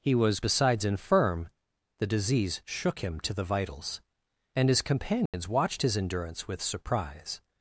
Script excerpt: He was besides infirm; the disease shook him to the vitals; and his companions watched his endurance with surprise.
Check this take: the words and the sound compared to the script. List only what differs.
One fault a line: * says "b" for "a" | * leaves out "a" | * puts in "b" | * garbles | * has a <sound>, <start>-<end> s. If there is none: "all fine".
* has a dropout, 5.3-5.3 s